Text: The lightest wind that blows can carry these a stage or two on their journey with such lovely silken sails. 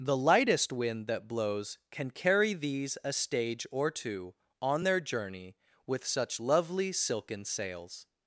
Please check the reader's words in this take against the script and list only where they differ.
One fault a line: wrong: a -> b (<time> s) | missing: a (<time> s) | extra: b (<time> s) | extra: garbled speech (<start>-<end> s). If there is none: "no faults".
no faults